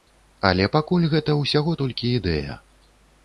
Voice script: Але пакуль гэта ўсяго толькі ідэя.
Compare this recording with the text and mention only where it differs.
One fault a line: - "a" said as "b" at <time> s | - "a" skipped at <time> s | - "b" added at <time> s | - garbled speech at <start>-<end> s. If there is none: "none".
none